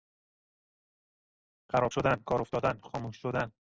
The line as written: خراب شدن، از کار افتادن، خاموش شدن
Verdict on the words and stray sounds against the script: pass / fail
fail